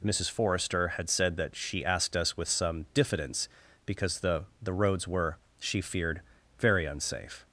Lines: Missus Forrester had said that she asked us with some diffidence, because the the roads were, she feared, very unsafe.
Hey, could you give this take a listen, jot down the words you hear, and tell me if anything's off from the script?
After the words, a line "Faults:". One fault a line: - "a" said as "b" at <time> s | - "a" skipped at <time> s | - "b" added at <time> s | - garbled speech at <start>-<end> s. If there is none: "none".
Missus Forrester had said that she asked us with some diffidence, because the the roads were, she feared, very unsafe.
Faults:
none